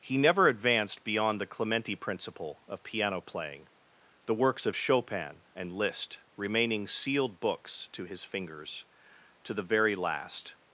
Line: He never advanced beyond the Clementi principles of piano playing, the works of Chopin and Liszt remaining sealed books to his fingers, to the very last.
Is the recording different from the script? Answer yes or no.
yes